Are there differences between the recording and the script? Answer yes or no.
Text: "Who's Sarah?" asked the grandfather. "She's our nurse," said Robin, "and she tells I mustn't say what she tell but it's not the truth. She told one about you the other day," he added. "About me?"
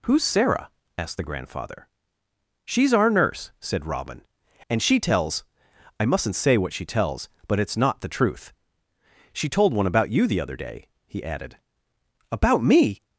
yes